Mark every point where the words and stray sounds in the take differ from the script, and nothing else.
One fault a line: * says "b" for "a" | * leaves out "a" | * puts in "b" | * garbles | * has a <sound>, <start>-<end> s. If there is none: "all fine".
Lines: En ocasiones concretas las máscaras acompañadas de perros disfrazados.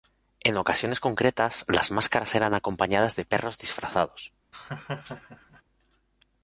* puts in "eran"
* has a laugh, 4.5-5.6 s